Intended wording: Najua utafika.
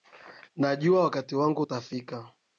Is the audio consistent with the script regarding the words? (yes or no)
no